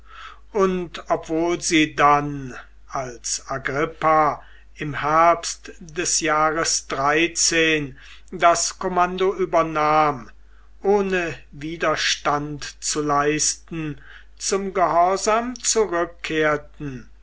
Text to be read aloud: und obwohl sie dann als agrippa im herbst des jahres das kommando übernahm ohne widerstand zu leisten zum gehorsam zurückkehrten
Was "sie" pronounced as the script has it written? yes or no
yes